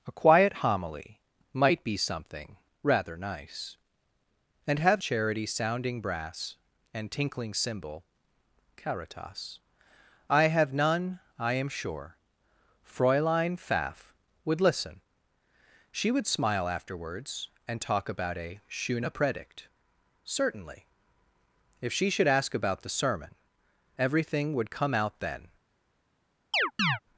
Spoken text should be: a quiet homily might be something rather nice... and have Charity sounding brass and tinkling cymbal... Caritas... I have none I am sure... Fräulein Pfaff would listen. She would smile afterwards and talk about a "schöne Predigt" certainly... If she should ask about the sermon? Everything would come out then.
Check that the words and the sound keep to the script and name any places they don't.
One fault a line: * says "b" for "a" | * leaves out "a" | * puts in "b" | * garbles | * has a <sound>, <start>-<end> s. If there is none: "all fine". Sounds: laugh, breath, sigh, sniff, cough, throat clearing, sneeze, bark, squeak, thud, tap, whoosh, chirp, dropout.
* has a chirp, 26.5-27.0 s